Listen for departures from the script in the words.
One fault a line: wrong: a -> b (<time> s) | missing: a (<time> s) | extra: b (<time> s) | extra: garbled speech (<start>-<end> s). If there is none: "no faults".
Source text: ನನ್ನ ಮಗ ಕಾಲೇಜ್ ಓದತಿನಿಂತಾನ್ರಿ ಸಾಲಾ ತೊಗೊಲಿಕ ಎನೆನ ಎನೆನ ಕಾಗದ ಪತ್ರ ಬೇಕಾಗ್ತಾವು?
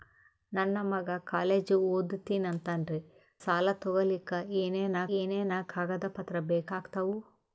no faults